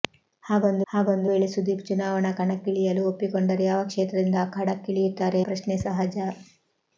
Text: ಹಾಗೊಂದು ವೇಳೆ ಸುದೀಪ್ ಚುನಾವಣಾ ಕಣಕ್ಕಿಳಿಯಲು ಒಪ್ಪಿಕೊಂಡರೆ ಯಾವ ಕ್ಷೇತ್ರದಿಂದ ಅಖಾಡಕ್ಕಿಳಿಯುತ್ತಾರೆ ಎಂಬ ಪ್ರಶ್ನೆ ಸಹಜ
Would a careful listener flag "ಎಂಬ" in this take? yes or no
yes